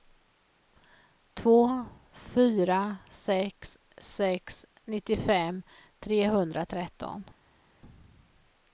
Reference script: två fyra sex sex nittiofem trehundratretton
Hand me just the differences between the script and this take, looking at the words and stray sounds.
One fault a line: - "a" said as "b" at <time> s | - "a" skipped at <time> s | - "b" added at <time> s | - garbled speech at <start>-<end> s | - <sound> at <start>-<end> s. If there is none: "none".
none